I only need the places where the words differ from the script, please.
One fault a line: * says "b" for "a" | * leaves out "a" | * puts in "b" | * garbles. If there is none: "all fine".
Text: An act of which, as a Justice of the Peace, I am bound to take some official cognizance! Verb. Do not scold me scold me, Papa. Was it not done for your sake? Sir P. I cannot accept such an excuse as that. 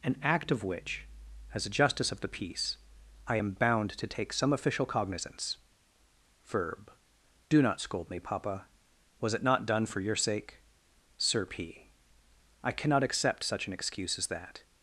* leaves out "scold me"